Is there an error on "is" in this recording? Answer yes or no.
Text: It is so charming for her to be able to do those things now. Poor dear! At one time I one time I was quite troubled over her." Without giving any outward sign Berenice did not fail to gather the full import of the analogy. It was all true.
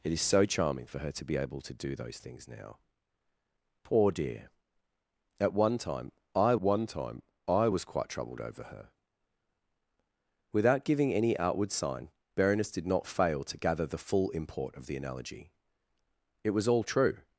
no